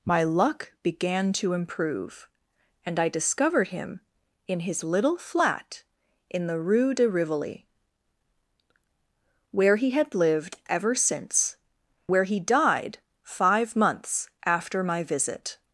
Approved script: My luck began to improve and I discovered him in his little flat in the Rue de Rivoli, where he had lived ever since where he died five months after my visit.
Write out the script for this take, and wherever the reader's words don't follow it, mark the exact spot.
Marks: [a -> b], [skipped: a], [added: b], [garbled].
My luck began to improve and I discovered him in his little flat in the Rue de Rivoli, where he had lived ever since where he died five months after my visit.